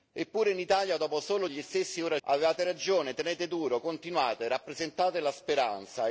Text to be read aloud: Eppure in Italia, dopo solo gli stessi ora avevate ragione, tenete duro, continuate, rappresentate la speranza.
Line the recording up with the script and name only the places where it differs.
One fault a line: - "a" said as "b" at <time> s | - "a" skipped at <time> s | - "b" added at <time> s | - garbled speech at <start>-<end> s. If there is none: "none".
none